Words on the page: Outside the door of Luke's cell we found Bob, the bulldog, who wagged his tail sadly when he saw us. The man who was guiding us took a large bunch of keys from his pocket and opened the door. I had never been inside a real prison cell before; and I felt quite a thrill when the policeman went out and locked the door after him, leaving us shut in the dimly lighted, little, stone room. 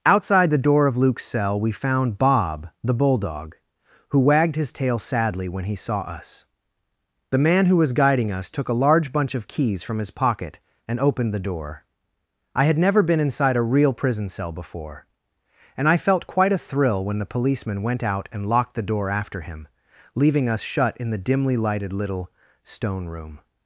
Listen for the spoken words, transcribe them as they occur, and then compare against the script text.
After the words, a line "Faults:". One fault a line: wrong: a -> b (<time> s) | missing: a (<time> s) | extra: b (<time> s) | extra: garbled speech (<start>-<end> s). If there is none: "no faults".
Outside the door of Luke's cell we found Bob, the bulldog, who wagged his tail sadly when he saw us. The man who was guiding us took a large bunch of keys from his pocket and opened the door. I had never been inside a real prison cell before; and I felt quite a thrill when the policeman went out and locked the door after him, leaving us shut in the dimly lighted, little, stone room.
Faults:
no faults